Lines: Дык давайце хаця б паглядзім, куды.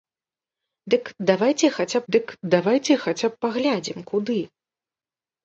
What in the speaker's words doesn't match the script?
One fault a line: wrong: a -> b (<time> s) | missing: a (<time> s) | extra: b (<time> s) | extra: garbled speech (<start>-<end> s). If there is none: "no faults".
extra: дык давайце хаця (2.1 s)